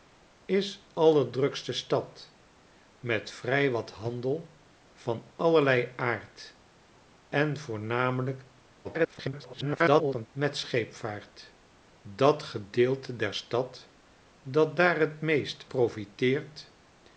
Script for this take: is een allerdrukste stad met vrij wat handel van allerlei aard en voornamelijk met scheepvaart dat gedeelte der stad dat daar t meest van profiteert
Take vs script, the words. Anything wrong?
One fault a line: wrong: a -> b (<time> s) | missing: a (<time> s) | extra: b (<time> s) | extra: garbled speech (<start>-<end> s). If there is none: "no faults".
missing: een (0.9 s)
extra: garbled speech (8.8-10.3 s)
missing: van (15.6 s)